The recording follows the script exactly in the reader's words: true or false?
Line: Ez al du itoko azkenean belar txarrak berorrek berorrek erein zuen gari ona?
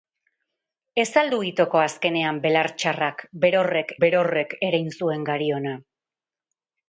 true